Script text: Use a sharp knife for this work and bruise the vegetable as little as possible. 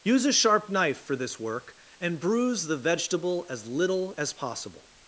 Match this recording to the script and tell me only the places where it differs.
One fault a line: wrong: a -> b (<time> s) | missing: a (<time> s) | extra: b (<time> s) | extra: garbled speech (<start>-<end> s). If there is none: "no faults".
no faults